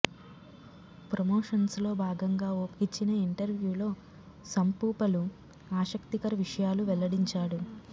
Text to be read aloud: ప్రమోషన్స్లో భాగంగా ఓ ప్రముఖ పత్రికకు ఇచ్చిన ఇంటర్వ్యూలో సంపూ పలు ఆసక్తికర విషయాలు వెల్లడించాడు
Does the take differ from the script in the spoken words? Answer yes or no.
yes